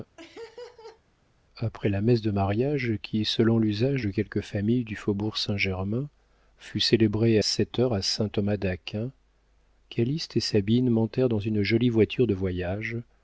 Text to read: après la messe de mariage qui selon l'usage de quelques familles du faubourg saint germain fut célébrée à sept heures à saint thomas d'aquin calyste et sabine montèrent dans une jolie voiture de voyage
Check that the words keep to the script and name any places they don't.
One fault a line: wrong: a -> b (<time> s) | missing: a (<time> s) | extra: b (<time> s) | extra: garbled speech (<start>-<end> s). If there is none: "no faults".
missing: à (7.4 s)